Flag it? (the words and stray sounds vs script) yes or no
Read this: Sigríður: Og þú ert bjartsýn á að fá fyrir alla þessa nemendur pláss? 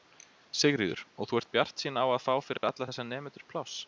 yes